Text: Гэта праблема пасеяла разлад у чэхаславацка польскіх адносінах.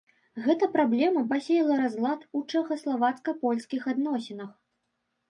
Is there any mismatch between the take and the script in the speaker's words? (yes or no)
no